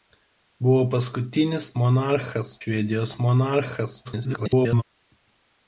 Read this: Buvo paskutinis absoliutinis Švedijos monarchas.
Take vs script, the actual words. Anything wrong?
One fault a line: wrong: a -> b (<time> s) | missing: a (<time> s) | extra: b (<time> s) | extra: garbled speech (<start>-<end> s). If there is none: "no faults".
wrong: absoliutinis -> monarchas (1.8 s)
extra: garbled speech (4.0-4.8 s)